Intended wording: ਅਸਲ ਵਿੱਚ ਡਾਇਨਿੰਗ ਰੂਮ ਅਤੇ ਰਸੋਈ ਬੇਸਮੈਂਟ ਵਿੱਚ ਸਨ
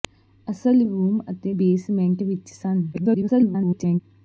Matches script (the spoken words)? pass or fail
fail